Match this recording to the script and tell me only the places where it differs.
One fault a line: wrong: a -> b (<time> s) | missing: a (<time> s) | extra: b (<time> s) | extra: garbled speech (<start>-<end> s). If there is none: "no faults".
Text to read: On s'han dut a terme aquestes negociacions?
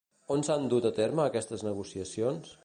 no faults